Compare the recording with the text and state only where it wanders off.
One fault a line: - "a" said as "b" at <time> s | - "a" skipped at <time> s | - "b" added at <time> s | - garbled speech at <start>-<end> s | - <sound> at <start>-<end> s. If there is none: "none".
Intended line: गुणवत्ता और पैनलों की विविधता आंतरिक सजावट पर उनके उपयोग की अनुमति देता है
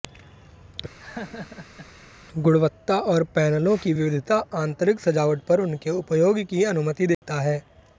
- laugh at 1.0-1.9 s
- dropout at 7.1-7.2 s